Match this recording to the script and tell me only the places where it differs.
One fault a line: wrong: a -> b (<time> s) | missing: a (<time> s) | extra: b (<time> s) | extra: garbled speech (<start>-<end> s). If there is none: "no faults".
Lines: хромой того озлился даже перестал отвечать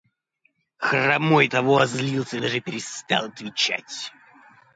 no faults